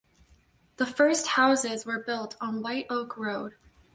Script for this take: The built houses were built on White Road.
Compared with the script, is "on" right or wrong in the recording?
right